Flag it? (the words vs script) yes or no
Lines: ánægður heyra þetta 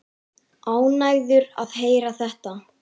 yes